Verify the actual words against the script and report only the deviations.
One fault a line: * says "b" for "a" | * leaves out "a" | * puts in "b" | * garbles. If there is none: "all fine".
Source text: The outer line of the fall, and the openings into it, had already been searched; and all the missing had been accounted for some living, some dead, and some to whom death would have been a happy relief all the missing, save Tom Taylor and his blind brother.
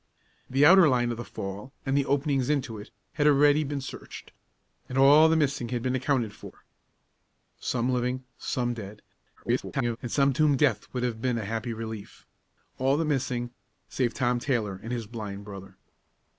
* garbles